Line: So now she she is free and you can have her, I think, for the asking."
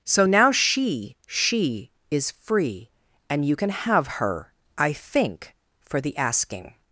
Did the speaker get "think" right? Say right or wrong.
right